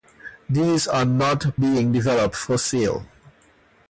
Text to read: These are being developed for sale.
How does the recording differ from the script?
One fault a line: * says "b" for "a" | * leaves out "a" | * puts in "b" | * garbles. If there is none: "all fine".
* puts in "not"